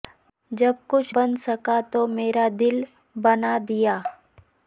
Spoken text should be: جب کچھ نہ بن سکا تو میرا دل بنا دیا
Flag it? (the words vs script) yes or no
yes